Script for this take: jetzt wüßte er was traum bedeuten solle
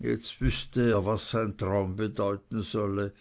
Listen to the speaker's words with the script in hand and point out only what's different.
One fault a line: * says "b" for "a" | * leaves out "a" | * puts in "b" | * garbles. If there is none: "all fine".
* puts in "sein"